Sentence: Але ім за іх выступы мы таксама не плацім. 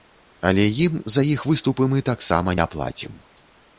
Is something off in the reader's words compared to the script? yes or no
no